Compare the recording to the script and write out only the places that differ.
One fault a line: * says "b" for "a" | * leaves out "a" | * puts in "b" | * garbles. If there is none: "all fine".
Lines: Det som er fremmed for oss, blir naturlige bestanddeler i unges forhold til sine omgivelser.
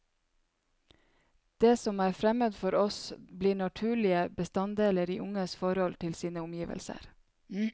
all fine